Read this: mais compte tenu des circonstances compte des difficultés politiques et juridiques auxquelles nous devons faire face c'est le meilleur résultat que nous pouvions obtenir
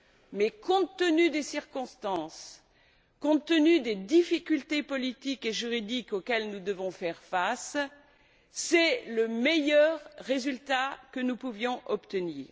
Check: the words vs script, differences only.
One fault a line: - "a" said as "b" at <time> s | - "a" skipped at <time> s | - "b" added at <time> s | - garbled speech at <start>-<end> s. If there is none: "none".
- "tenu" added at 3.5 s